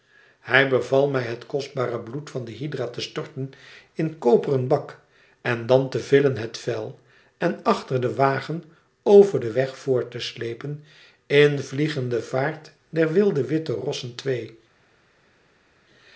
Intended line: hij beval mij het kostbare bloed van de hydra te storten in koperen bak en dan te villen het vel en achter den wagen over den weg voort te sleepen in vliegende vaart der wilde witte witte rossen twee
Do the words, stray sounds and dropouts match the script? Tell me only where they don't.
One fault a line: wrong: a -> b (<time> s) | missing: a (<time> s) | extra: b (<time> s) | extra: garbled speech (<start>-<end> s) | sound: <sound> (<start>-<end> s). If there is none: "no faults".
missing: witte (13.7 s)